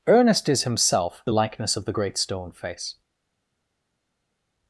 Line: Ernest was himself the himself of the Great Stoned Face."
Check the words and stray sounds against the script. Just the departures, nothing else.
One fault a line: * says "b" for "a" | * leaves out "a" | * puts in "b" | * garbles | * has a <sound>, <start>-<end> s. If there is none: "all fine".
* says "is" for "was"
* says "likeness" for "himself"
* says "Stone" for "Stoned"